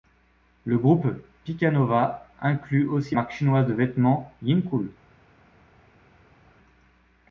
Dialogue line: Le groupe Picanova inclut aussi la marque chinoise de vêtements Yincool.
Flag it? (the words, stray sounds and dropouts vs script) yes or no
yes